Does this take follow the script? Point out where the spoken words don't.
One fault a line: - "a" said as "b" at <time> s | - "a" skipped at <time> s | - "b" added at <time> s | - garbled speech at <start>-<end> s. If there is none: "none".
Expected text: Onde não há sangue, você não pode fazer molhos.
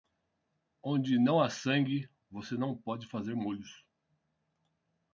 none